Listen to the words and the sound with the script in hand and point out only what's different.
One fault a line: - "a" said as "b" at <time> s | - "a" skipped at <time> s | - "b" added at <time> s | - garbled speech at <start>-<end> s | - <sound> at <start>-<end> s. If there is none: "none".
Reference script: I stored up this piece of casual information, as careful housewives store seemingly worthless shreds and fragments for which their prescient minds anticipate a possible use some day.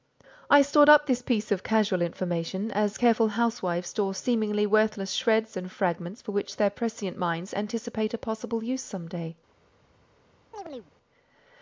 - chirp at 10.5-10.9 s